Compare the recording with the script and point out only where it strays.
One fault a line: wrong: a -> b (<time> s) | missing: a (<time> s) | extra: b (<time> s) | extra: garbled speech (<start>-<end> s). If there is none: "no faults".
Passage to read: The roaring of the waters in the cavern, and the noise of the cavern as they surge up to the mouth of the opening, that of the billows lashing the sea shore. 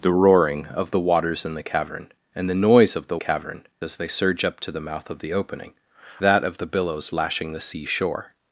no faults